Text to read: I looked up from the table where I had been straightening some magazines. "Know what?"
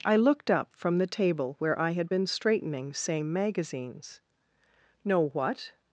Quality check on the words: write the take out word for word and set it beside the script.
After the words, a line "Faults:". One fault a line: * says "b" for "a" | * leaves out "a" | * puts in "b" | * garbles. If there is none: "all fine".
I looked up from the table where I had been straightening same magazines. "Know what?"
Faults:
* says "same" for "some"